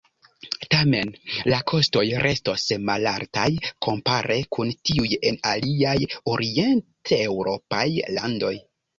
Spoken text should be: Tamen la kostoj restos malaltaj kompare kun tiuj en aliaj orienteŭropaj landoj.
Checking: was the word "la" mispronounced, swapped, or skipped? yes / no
no